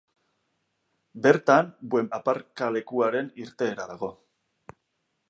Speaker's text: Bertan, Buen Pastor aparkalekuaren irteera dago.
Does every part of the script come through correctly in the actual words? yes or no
no